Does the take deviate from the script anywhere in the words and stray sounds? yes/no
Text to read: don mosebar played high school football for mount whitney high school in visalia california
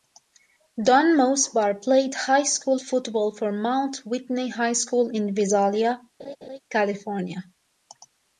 yes